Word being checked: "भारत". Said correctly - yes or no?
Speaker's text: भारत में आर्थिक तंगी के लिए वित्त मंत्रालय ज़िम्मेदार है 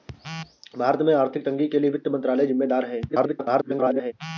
yes